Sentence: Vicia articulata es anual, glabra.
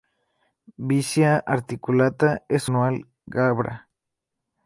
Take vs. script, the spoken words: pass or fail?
pass